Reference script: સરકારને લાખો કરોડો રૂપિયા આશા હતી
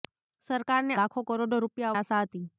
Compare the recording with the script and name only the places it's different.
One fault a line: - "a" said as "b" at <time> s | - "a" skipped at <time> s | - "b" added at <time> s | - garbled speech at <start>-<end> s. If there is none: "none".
none